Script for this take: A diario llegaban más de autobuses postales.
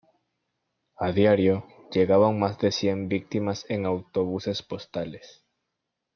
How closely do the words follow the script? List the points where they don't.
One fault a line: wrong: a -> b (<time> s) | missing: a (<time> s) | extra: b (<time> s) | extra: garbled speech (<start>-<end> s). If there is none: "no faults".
extra: cien víctimas en (2.7 s)